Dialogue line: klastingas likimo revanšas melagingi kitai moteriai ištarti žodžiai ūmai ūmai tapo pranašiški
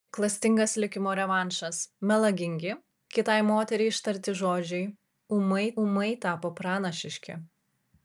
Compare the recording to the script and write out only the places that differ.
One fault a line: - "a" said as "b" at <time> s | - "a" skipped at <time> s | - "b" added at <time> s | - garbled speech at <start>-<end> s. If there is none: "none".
none